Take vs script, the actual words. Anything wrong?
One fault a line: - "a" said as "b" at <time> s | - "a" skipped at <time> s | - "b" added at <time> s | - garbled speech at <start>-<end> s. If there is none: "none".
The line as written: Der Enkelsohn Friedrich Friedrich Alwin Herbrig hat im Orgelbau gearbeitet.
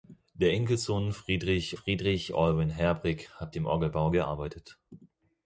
none